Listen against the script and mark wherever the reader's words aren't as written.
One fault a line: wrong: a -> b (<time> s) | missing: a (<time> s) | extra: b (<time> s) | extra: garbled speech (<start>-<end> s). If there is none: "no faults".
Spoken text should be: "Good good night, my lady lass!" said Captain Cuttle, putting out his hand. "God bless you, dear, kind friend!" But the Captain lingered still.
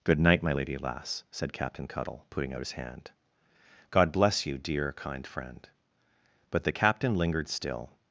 missing: good (0.2 s)